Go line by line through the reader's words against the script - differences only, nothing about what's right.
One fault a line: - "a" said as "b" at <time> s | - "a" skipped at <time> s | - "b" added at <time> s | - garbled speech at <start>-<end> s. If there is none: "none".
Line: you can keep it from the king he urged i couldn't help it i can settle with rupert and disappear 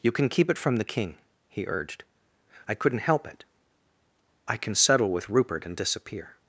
none